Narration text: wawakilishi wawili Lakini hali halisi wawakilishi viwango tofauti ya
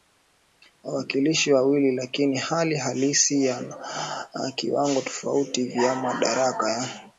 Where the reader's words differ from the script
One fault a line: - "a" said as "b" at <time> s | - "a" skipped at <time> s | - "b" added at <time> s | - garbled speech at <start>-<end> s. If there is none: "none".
- "wawakilishi" said as "yana" at 3.5 s
- "vya madaraka" added at 5.6 s